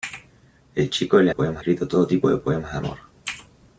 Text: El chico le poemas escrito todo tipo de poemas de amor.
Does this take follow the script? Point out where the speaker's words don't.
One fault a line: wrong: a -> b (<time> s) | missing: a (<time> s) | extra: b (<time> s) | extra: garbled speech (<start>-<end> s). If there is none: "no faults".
no faults